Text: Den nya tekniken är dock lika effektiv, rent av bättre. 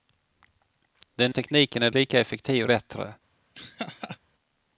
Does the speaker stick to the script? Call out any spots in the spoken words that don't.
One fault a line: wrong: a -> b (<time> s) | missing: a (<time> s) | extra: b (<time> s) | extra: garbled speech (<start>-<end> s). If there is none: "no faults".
missing: nya (1.3 s)
missing: dock (1.9 s)
missing: rent av (2.7 s)